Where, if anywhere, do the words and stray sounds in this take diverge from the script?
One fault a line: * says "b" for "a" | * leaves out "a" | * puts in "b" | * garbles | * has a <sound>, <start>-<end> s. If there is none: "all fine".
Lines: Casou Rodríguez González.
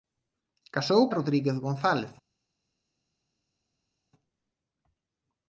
all fine